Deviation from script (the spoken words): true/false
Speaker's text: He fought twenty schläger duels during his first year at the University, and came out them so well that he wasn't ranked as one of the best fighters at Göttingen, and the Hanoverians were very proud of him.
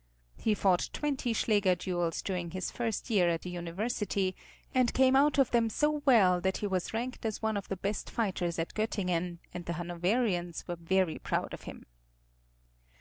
true